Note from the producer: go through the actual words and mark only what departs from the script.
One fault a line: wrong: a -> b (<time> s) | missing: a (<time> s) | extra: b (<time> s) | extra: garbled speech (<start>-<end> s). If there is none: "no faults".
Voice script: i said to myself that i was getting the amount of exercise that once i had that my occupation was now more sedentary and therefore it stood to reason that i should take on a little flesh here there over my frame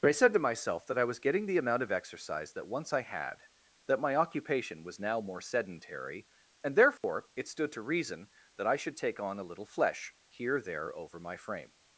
no faults